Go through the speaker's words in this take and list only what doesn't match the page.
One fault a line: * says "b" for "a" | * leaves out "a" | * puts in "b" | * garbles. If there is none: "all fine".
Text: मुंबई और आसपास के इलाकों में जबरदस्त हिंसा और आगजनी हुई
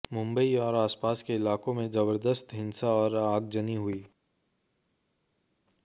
all fine